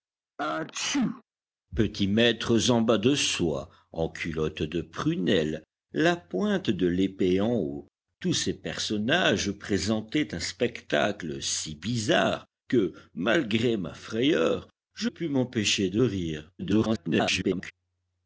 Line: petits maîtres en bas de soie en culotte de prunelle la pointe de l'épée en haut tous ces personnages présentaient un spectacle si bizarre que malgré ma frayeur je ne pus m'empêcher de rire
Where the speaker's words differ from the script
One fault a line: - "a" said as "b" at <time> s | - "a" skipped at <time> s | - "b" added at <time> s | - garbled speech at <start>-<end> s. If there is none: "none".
- "ne" skipped at 15.1 s
- garbled speech at 16.6-17.7 s